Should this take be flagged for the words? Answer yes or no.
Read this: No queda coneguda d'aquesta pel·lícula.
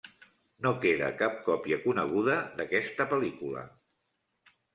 yes